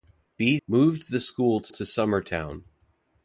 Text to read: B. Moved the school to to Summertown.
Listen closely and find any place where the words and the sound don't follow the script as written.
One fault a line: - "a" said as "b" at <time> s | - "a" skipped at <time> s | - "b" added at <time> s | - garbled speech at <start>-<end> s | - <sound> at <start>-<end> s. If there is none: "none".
none